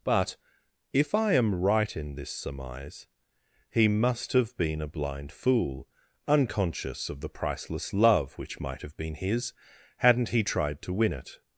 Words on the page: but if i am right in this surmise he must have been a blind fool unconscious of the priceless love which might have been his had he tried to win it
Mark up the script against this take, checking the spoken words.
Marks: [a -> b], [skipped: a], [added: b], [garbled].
but if i am right in this surmise he must have been a blind fool unconscious of the priceless love which might have been his [had -> hadn't] he tried to win it